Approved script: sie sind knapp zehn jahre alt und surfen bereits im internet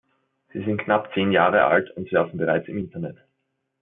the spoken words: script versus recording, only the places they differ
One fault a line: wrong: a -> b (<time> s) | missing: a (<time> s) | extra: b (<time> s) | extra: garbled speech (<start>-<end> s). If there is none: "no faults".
no faults